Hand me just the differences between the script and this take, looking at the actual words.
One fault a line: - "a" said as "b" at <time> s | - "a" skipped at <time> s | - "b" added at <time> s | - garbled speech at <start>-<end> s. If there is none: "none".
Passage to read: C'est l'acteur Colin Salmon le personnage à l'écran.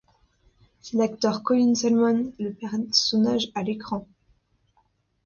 none